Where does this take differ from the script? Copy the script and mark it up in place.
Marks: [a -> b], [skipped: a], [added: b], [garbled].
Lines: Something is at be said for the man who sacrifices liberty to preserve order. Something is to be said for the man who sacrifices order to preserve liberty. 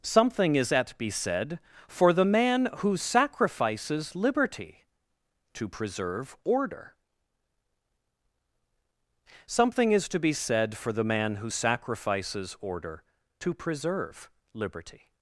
Something is at be said for the man who sacrifices liberty to preserve order. Something is to be said for the man who sacrifices order to preserve liberty.